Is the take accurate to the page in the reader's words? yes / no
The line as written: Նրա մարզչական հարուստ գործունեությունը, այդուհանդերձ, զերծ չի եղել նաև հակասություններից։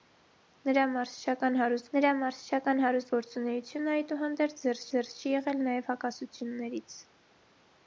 no